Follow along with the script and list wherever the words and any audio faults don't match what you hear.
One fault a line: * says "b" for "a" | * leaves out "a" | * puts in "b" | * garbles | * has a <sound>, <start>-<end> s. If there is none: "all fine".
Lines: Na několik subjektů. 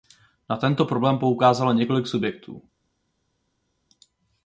* puts in "tento problém poukázalo"